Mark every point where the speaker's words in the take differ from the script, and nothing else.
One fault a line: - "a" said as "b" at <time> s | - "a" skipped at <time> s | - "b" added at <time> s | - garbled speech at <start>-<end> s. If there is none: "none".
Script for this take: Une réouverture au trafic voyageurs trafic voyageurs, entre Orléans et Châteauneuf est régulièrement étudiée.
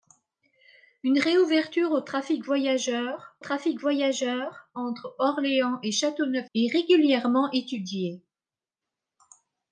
none